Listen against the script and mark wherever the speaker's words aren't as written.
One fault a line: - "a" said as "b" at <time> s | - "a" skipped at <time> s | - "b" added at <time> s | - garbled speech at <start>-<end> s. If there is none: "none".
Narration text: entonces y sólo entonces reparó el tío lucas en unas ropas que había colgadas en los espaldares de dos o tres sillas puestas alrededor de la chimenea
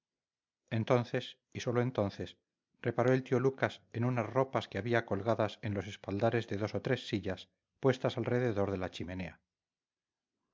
none